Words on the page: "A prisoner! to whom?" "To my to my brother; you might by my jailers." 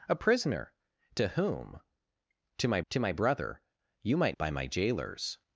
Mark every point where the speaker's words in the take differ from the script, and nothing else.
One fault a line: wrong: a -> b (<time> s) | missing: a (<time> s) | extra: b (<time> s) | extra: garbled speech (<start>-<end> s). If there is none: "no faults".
no faults